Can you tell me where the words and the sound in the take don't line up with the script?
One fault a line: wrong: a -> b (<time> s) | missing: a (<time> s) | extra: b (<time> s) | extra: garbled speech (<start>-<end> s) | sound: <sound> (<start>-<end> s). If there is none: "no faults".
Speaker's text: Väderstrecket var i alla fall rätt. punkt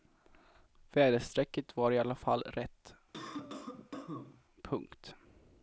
sound: cough (3.1-4.4 s)